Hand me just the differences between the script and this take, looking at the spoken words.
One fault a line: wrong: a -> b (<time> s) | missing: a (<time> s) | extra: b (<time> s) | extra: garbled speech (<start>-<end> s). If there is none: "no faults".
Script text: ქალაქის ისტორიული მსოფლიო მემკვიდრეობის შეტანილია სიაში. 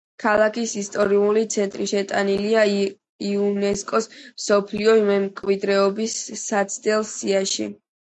extra: ცენტრი შეტანილია იუნესკოს (1.6 s)
wrong: შეტანილია -> საცდელ (6.4 s)